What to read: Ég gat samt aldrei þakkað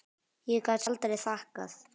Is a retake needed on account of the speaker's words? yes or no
yes